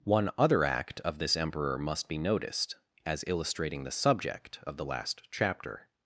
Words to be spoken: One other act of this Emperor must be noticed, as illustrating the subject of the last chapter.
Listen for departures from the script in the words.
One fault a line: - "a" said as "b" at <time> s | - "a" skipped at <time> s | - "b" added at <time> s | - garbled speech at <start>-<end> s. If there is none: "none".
none